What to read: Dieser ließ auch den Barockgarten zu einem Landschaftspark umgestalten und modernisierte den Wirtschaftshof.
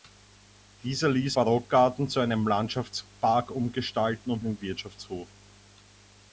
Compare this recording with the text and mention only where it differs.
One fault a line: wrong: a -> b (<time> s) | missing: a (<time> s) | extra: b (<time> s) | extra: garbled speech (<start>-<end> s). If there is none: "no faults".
missing: auch den (1.4 s)
missing: modernisierte (4.4 s)